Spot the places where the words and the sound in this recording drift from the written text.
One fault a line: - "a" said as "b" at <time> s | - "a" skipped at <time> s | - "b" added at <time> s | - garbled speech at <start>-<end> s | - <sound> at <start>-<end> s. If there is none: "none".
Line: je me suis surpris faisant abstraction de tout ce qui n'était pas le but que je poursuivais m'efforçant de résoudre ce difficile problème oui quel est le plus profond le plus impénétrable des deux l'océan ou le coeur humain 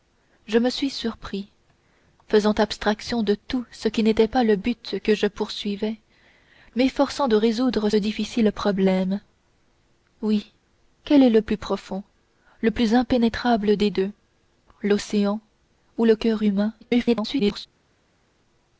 - "ce" skipped at 7.9 s
- garbled speech at 16.8-17.7 s